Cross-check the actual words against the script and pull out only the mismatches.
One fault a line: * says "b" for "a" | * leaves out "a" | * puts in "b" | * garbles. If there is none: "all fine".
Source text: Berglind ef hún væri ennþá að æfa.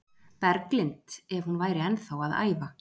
all fine